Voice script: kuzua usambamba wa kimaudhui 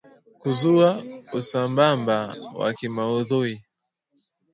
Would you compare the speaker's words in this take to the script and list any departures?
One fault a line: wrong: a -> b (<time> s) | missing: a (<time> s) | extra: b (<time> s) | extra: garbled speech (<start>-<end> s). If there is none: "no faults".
no faults